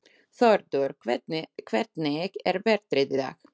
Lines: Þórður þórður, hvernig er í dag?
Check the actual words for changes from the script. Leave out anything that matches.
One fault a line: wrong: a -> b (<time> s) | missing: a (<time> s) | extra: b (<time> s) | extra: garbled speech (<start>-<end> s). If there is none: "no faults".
missing: þórður (0.9 s)
extra: veðrið (2.7 s)